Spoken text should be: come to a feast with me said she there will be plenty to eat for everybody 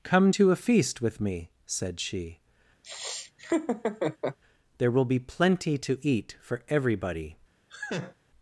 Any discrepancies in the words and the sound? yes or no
yes